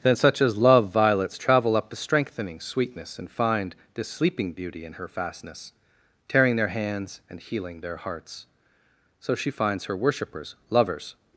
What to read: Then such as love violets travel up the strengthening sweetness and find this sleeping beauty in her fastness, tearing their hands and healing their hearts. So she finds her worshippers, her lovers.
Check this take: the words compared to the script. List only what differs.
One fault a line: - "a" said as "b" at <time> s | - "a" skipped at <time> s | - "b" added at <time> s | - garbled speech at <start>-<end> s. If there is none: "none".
- "her" skipped at 10.6 s